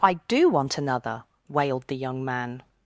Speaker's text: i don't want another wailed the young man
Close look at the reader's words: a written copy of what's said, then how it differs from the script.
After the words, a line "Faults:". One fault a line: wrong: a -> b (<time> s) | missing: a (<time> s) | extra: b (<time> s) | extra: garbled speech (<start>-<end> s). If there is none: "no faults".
i do want another wailed the young man
Faults:
wrong: don't -> do (0.3 s)